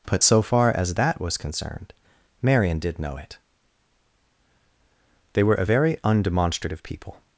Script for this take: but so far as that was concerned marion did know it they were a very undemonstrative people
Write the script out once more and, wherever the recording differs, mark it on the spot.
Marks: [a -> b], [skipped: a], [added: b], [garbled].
but so far as that was concerned marion did know it they were a very undemonstrative people